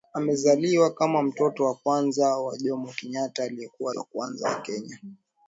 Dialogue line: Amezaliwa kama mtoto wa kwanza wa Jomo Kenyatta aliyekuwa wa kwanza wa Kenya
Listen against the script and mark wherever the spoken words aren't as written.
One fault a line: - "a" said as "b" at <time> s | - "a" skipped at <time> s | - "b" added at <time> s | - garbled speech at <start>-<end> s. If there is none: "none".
none